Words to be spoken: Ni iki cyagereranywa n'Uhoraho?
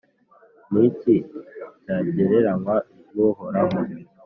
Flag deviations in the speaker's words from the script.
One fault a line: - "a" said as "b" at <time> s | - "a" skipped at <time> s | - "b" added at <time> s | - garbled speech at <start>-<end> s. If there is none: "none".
none